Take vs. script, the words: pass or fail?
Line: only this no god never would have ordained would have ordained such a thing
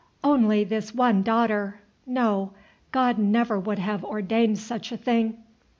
fail